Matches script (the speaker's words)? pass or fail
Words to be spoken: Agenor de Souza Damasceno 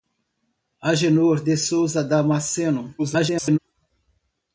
fail